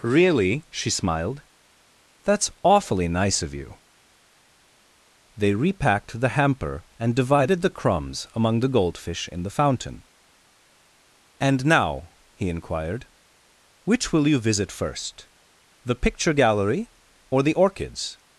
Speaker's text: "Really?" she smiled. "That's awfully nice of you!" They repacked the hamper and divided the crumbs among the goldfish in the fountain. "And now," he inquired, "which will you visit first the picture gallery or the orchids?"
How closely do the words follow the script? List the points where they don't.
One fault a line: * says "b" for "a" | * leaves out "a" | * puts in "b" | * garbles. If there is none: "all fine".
all fine